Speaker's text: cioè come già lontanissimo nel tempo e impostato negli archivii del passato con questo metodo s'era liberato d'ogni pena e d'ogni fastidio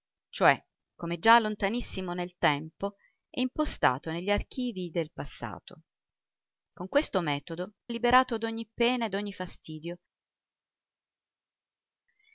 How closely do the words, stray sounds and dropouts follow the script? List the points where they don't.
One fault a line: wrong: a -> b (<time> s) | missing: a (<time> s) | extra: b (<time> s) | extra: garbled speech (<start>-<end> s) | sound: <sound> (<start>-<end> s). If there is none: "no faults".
missing: s'era (7.7 s)